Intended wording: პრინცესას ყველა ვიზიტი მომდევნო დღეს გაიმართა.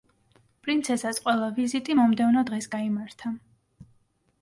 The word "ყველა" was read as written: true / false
true